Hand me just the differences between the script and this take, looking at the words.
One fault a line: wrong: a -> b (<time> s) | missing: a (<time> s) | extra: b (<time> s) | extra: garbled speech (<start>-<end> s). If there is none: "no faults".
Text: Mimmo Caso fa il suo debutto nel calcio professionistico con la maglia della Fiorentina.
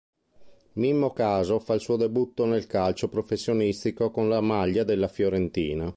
no faults